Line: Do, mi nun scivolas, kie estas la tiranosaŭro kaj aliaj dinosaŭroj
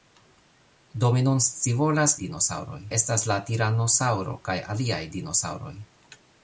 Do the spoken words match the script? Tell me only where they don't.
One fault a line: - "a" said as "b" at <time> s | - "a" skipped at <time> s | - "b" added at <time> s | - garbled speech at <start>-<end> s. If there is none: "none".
- "kie" said as "dinosaŭroj" at 2.2 s